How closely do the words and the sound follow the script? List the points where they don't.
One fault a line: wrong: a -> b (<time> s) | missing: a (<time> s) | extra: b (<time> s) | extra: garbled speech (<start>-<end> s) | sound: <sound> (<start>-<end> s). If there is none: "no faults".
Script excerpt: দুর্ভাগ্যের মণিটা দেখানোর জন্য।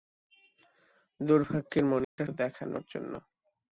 sound: dropout (2.0-2.2 s)